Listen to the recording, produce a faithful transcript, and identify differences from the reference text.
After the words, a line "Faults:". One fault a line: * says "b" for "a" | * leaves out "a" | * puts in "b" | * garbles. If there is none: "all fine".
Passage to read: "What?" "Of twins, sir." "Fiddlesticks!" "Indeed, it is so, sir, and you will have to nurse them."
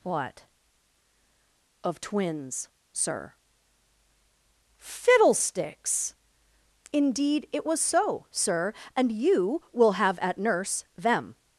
"What?" "Of twins, sir." "Fiddlesticks!" "Indeed, it was so, sir, and you will have at nurse them."
Faults:
* says "was" for "is"
* says "at" for "to"